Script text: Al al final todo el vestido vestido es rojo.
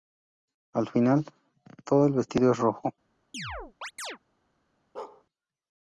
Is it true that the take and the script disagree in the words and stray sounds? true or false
true